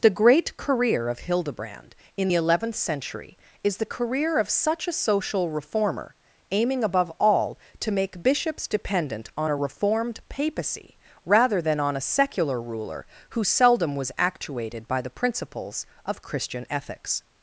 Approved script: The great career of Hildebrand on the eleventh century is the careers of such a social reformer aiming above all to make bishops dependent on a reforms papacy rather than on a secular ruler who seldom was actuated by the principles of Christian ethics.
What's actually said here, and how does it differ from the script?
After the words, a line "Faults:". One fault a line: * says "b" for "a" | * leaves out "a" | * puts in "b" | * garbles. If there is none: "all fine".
The great career of Hildebrand in the eleventh century is the career of such a social reformer aiming above all to make bishops dependent on a reformed papacy rather than on a secular ruler who seldom was actuated by the principles of Christian ethics.
Faults:
* says "in" for "on"
* says "career" for "careers"
* says "reformed" for "reforms"